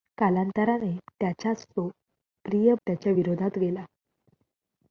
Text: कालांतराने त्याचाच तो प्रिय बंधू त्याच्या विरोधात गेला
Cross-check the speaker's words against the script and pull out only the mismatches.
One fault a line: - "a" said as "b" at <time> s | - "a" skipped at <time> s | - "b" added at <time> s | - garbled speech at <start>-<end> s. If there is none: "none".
- "बंधू" skipped at 2.7 s